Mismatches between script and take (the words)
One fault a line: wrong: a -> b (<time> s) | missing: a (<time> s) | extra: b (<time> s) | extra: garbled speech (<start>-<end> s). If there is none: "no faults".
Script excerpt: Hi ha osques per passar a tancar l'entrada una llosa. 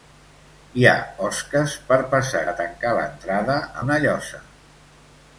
no faults